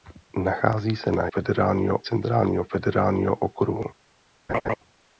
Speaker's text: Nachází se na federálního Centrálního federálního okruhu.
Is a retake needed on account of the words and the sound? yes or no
yes